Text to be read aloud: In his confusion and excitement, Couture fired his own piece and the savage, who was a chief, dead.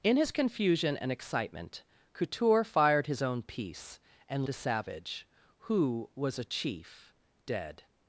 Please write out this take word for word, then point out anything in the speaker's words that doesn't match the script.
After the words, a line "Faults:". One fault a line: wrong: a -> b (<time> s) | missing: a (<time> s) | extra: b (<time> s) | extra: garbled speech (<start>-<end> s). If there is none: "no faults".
In his confusion and excitement, Couture fired his own piece and the savage, who was a chief, dead.
Faults:
no faults